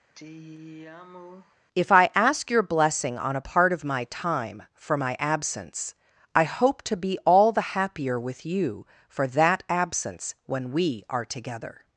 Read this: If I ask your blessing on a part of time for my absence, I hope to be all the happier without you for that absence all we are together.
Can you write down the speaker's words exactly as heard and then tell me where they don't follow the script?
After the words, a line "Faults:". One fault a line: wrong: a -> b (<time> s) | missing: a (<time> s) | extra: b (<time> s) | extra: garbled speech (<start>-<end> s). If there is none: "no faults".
If I ask your blessing on a part of my time for my absence, I hope to be all the happier with you for that absence when we are together.
Faults:
extra: my (3.8 s)
wrong: without -> with (8.2 s)
wrong: all -> when (10.5 s)